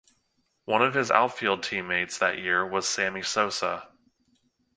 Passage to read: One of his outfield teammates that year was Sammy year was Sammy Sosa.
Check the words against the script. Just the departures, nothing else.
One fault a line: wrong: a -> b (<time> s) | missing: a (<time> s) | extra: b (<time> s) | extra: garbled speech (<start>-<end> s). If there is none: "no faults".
missing: year was Sammy (3.2 s)